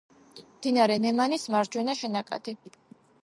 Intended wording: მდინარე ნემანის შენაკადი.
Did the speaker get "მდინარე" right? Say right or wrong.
right